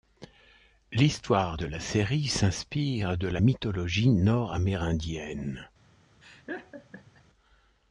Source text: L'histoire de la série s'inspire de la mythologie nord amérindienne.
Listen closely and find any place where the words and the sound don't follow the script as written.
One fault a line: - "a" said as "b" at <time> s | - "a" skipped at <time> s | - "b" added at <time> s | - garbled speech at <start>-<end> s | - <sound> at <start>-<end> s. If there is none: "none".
- laugh at 6.2-7.2 s